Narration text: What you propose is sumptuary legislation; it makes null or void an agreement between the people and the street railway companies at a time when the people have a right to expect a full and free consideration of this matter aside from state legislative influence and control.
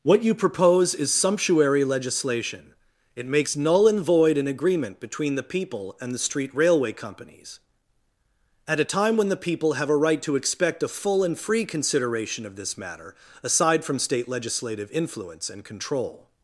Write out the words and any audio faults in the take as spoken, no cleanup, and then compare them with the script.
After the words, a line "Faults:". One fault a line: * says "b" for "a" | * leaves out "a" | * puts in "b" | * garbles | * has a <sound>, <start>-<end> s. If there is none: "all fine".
What you propose is sumptuary legislation; it makes null and void an agreement between the people and the street railway companies at a time when the people have a right to expect a full and free consideration of this matter aside from state legislative influence and control.
Faults:
* says "and" for "or"